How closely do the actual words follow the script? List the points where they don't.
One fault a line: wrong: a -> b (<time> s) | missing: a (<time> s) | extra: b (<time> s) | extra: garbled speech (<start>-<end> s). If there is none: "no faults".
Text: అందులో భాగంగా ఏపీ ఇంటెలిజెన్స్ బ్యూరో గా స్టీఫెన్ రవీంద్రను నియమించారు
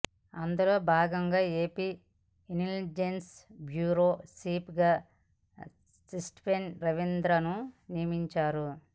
extra: చీఫ్ (4.3 s)